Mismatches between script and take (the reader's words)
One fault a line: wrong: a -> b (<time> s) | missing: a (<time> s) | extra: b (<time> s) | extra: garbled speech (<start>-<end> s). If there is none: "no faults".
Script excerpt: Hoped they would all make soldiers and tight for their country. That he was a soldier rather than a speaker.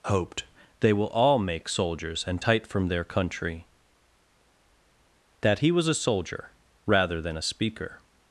wrong: would -> will (0.9 s)
wrong: for -> from (2.6 s)